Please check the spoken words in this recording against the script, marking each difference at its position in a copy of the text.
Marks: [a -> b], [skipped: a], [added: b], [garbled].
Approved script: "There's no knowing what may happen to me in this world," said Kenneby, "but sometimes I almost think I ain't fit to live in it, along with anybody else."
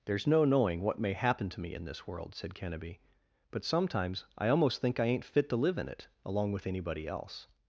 "There's no knowing what may happen to me in this world," said Kenneby, "but sometimes I almost think I ain't fit to live in it, along with anybody else."